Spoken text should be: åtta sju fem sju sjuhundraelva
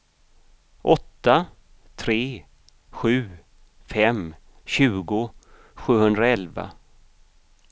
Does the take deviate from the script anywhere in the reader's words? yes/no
yes